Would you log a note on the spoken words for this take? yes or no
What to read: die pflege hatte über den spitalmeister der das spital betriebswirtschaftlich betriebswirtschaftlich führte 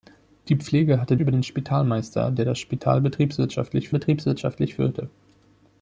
no